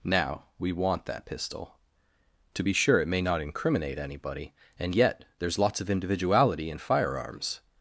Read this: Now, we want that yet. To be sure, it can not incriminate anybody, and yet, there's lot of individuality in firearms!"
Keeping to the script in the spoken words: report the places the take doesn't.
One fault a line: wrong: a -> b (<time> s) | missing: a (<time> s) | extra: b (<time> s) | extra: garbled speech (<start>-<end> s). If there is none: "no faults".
wrong: yet -> pistol (1.2 s)
wrong: can -> may (3.1 s)
wrong: lot -> lots (5.6 s)